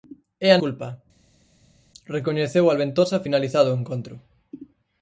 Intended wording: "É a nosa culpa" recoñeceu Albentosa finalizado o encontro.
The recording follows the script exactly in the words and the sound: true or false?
false